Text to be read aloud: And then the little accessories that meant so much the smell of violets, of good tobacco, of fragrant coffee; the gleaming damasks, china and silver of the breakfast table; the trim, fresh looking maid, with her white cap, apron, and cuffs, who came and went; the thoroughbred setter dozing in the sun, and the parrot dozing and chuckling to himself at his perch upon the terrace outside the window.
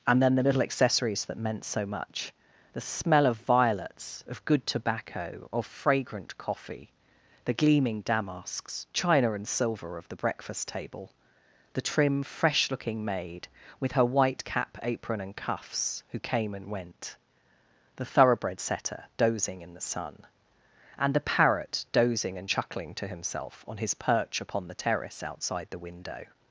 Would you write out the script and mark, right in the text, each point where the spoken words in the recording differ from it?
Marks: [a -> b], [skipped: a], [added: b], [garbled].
And then the little accessories that meant so much the smell of violets, of good tobacco, of fragrant coffee; the gleaming damasks, china and silver of the breakfast table; the trim, fresh looking maid, with her white cap, apron, and cuffs, who came and went; the thoroughbred setter dozing in the sun, and the parrot dozing and chuckling to himself [at -> on] his perch upon the terrace outside the window.